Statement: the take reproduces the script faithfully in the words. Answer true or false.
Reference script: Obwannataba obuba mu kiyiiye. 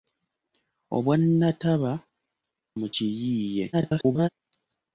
false